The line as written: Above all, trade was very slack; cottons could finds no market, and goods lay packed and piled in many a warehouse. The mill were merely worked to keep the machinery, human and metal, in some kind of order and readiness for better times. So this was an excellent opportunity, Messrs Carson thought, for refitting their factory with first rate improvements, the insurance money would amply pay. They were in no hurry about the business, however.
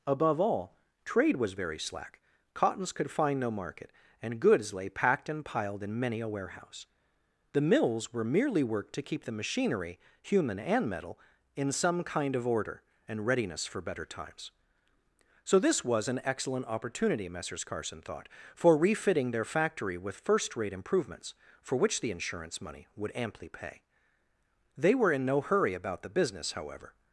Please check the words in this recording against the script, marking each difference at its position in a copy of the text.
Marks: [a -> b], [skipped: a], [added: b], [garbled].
Above all, trade was very slack; cottons could [finds -> find] no market, and goods lay packed and piled in many a warehouse. The [mill -> mills] were merely worked to keep the machinery, human and metal, in some kind of order and readiness for better times. So this was an excellent opportunity, Messrs Carson thought, for refitting their factory with first rate improvements, [added: for which] the insurance money would amply pay. They were in no hurry about the business, however.